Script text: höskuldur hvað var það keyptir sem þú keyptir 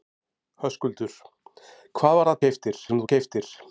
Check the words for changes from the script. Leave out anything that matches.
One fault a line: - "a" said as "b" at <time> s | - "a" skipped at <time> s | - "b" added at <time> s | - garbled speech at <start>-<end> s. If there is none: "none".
none